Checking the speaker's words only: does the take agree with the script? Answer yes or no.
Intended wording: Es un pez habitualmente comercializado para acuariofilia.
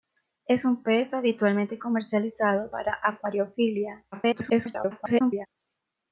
no